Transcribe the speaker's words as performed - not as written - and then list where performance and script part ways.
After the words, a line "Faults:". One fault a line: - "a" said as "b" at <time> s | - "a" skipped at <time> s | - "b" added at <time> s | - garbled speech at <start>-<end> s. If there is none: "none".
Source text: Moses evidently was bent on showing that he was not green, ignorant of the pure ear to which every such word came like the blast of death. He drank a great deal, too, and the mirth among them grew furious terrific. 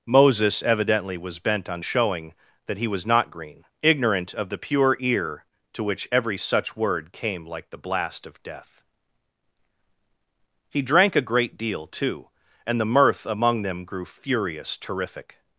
Moses evidently was bent on showing that he was not green, ignorant of the pure ear to which every such word came like the blast of death. He drank a great deal, too, and the mirth among them grew furious terrific.
Faults:
none